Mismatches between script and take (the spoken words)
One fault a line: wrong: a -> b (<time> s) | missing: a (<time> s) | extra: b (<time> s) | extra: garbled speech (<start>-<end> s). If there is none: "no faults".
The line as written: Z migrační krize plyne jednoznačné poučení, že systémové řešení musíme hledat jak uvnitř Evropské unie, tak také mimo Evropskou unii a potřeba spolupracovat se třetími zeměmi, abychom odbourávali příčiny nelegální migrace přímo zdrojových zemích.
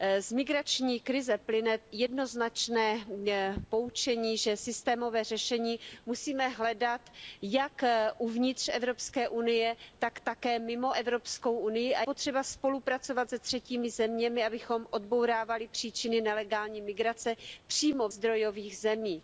no faults